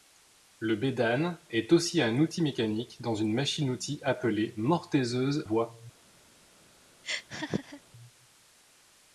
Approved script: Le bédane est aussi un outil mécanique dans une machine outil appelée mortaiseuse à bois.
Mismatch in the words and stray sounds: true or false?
true